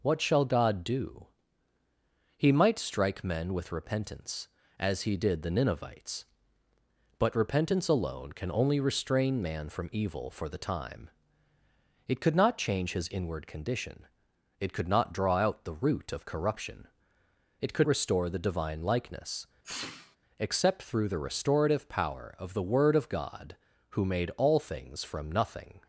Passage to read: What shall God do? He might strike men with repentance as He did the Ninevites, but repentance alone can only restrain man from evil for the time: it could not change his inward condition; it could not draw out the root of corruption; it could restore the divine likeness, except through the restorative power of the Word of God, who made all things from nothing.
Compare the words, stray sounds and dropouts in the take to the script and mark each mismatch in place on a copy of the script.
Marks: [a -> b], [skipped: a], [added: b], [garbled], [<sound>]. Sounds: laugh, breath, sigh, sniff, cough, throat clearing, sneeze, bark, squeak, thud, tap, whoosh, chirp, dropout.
What shall God do? He might strike men with repentance as He did the Ninevites, but repentance alone can only restrain man from evil for the time: it could not change his inward condition; it could not draw out the root of corruption; it could restore the divine likeness, [sneeze] except through the restorative power of the Word of God, who made all things from nothing.